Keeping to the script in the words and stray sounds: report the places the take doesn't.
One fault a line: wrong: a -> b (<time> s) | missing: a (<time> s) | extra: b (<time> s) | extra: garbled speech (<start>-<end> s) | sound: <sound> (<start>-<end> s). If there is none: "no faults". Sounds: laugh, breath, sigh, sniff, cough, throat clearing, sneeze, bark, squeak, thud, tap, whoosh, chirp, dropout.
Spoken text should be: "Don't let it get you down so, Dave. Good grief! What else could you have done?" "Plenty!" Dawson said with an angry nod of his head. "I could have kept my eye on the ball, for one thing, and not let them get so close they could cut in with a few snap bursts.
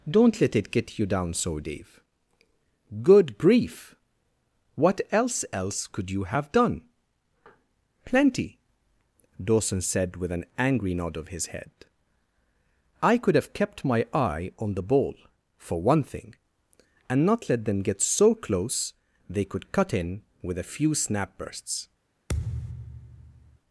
extra: else (5.5 s)
sound: thud (22.3-23.6 s)